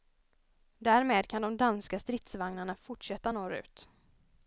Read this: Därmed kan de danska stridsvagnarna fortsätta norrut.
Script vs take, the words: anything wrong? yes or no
no